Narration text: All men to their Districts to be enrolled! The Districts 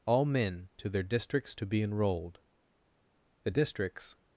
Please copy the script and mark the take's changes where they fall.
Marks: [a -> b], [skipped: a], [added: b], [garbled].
All men to their Districts to be enrolled! The Districts